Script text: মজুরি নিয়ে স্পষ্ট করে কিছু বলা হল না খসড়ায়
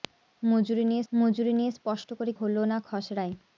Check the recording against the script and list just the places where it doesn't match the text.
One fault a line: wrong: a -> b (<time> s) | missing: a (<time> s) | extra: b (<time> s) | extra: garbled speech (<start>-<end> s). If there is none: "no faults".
extra: মজুরি নিয়ে (1.1 s)
missing: কিছু বলা (2.3 s)